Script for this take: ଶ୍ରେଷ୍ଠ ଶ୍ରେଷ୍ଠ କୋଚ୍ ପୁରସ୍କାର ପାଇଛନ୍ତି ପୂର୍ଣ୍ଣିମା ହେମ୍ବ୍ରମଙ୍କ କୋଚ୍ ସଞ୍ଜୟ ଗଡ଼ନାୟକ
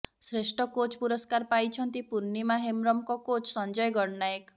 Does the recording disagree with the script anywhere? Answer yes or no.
yes